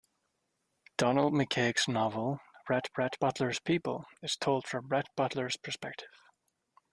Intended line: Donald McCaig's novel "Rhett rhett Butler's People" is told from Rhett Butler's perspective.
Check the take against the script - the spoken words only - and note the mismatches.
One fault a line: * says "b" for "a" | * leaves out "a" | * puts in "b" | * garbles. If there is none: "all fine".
all fine